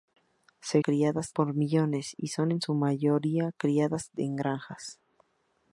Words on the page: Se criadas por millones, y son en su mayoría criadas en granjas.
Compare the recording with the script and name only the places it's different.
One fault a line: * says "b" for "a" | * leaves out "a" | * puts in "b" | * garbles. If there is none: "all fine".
all fine